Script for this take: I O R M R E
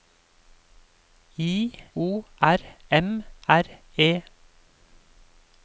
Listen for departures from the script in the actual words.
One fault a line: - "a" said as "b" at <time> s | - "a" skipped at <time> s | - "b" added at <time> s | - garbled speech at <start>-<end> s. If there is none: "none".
none